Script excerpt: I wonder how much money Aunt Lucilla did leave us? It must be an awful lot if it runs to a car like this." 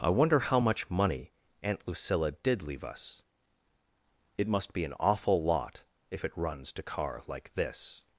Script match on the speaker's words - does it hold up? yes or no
no